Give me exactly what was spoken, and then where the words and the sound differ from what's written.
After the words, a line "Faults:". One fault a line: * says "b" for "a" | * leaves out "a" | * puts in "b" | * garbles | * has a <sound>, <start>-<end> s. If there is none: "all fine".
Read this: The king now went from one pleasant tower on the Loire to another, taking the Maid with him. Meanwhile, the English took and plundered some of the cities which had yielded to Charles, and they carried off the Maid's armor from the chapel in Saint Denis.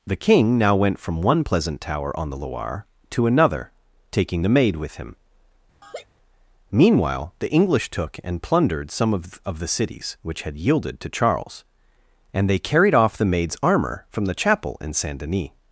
The king now went from one pleasant tower on the Loire to another, taking the Maid with him. Meanwhile, the English took and plundered some of of the cities which had yielded to Charles, and they carried off the Maid's armor from the chapel in Saint Denis.
Faults:
* has a laugh, 5.8-6.1 s
* puts in "of"